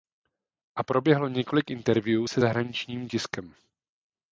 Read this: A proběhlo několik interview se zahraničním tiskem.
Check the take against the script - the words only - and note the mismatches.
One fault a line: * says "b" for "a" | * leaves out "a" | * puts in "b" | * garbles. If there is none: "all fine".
all fine